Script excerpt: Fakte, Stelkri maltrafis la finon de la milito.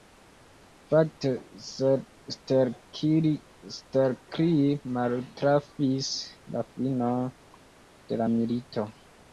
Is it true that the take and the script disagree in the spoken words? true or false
false